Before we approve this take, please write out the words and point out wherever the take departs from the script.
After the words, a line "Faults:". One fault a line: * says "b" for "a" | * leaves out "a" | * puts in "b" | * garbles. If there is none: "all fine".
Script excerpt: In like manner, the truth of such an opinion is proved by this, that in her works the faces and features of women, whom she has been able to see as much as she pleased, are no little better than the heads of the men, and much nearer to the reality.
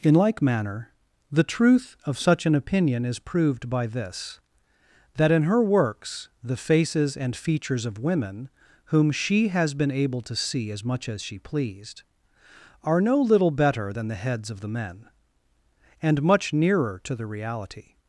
In like manner, the truth of such an opinion is proved by this, that in her works the faces and features of women, whom she has been able to see as much as she pleased, are no little better than the heads of the men, and much nearer to the reality.
Faults:
all fine